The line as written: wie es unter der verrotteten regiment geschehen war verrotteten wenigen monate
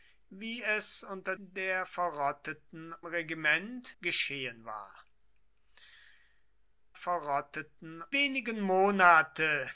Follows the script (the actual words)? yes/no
yes